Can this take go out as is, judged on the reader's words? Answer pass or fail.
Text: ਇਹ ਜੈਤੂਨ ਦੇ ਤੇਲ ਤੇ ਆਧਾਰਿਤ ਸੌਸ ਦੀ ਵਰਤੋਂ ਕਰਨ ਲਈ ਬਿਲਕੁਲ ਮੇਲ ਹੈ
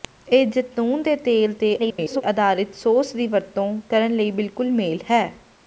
fail